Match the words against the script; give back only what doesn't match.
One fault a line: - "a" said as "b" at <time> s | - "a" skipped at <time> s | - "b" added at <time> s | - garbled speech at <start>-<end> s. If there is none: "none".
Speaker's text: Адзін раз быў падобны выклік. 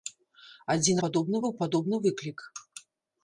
- "раз" said as "падобны" at 1.0 s